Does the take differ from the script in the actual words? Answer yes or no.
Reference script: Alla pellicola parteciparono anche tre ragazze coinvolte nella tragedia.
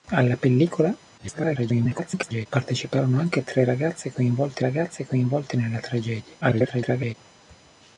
yes